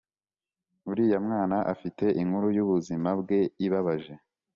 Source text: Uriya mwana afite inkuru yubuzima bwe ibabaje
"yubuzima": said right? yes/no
yes